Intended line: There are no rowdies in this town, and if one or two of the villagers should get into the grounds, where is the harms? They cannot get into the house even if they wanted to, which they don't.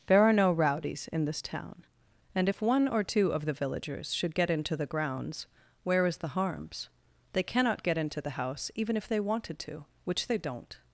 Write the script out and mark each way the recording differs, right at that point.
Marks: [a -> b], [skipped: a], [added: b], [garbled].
There are no rowdies in this town, and if one or two of the villagers should get into the grounds, where is the harms? They cannot get into the house even if they wanted to, which they don't.